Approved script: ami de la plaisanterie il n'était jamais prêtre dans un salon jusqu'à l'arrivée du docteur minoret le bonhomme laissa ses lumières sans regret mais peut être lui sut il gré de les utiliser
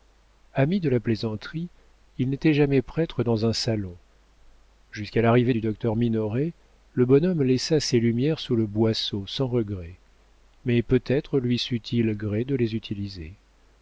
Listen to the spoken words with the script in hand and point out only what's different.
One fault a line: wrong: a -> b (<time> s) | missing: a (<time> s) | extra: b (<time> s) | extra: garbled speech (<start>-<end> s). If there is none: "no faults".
extra: sous le boisseau (8.4 s)